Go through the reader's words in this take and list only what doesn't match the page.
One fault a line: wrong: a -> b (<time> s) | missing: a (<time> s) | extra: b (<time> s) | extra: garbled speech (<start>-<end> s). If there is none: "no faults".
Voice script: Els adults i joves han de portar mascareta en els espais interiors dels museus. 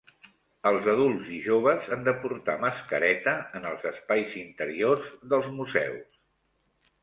no faults